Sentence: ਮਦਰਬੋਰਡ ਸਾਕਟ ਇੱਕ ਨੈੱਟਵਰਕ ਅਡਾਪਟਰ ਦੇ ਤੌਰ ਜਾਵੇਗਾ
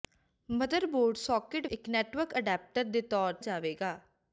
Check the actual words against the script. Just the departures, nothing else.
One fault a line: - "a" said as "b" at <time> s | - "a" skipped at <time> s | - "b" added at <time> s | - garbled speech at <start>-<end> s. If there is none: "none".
none